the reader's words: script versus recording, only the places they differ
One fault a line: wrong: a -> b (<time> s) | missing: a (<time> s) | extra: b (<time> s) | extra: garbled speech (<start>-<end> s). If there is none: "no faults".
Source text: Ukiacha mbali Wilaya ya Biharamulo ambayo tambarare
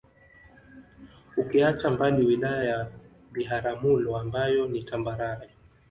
extra: ni (4.7 s)